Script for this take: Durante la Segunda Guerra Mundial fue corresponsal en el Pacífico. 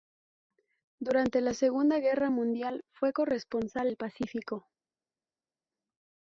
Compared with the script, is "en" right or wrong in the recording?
wrong